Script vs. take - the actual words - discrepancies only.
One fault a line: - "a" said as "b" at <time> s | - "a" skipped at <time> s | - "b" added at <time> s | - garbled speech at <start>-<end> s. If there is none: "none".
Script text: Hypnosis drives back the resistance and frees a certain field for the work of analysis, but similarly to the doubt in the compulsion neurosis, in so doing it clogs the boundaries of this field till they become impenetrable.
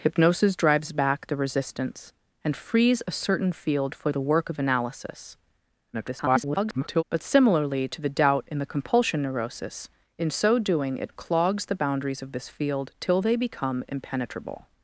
- garbled speech at 5.9-7.0 s